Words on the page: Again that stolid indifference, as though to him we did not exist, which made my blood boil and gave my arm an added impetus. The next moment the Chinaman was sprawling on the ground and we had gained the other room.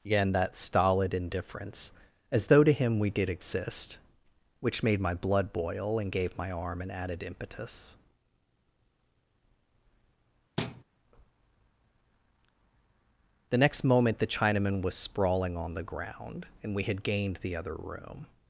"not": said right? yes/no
no